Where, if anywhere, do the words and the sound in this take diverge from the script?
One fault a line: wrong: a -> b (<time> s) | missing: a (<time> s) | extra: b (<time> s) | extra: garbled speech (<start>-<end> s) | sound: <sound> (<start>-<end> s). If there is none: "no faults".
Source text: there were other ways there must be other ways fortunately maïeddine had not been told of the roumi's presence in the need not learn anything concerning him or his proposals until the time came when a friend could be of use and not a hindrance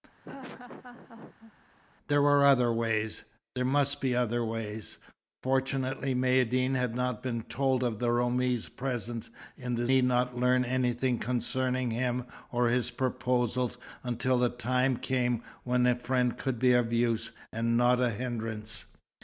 sound: laugh (0.2-1.5 s)